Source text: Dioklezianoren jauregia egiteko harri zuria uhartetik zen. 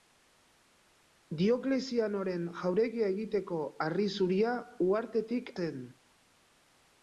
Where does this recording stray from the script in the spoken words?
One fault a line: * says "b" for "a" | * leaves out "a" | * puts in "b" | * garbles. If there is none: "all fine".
all fine